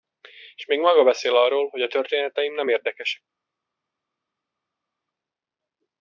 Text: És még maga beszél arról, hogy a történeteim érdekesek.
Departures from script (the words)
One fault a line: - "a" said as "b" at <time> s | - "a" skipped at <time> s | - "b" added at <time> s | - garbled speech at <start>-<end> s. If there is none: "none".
- "nem" added at 2.5 s